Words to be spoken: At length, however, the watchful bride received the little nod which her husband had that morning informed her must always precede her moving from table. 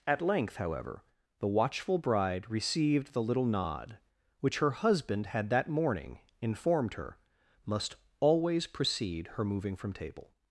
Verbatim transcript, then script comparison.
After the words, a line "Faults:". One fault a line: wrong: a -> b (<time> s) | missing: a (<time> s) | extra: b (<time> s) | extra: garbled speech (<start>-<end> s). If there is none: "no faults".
At length, however, the watchful bride received the little nod which her husband had that morning informed her must always precede her moving from table.
Faults:
no faults